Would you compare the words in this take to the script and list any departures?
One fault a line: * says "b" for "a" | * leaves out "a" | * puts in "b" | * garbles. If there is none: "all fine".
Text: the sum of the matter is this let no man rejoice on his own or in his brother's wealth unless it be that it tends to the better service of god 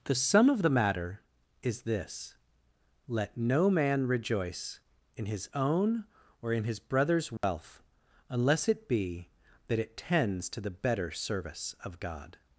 * says "in" for "on"